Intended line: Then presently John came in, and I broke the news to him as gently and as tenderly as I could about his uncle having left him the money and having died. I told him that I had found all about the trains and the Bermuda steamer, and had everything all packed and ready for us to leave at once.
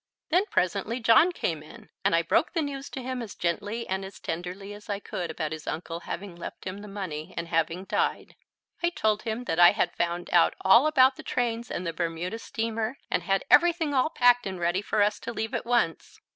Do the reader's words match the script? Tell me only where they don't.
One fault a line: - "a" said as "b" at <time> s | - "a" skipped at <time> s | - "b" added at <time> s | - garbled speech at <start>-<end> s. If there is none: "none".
- "out" added at 10.3 s